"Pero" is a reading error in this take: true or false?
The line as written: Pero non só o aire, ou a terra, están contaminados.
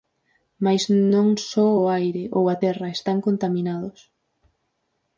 true